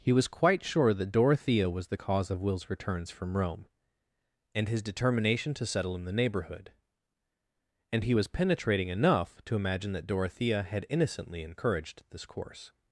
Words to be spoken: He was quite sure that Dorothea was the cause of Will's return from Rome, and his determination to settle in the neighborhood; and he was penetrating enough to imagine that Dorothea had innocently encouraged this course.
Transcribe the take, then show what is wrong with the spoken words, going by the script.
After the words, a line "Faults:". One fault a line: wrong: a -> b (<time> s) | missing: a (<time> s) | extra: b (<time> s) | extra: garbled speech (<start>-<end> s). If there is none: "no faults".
He was quite sure that Dorothea was the cause of Will's returns from Rome, and his determination to settle in the neighborhood; and he was penetrating enough to imagine that Dorothea had innocently encouraged this course.
Faults:
wrong: return -> returns (2.7 s)